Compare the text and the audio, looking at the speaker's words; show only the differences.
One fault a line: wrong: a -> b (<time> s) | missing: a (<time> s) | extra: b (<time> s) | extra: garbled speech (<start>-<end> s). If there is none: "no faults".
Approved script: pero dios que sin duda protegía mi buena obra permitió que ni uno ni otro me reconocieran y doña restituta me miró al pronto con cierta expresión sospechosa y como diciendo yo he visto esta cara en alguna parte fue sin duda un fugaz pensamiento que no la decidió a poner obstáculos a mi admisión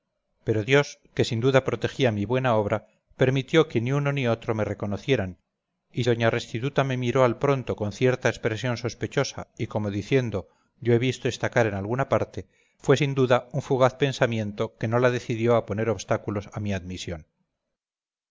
no faults